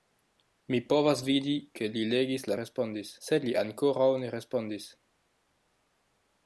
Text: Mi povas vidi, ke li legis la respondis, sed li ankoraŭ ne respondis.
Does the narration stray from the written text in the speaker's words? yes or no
no